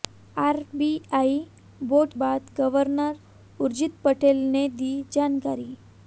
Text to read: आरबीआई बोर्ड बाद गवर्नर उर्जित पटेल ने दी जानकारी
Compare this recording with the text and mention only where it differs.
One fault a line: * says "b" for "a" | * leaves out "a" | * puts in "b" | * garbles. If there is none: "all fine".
all fine